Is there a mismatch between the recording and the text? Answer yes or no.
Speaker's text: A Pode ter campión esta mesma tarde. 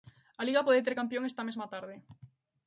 yes